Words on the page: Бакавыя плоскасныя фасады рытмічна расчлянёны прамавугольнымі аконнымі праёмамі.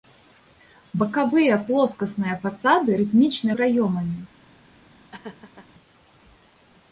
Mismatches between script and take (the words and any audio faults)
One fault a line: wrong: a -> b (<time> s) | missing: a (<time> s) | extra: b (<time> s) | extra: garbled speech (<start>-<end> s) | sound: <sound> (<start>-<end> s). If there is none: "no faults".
missing: расчлянёны прамавугольнымі аконнымі (3.5 s)
sound: laugh (5.1-5.7 s)